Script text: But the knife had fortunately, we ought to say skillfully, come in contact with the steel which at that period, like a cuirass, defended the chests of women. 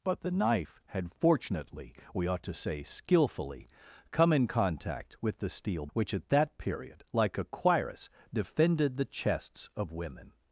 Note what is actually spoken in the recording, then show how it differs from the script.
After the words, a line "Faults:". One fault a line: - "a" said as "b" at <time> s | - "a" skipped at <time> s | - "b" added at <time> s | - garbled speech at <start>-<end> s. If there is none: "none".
But the knife had fortunately, we ought to say skillfully, come in contact with the steel which at that period, like a cuirass, defended the chests of women.
Faults:
none